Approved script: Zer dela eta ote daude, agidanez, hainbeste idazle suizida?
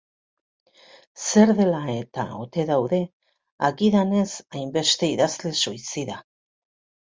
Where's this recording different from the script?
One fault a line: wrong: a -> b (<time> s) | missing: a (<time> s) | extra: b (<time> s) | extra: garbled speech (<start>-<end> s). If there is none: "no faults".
no faults